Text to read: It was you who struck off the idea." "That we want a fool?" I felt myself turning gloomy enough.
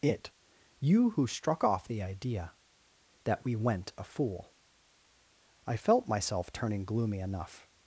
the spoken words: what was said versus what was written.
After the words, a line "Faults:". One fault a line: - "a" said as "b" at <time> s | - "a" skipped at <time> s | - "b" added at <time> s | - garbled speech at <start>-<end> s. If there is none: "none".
It you who struck off the idea." "That we went a fool?" I felt myself turning gloomy enough.
Faults:
- "was" skipped at 0.3 s
- "want" said as "went" at 3.6 s